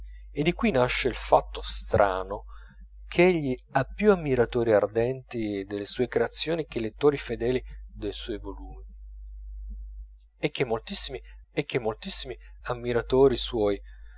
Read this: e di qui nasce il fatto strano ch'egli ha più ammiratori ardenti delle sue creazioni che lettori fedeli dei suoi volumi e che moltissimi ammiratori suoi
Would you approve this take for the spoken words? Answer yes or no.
no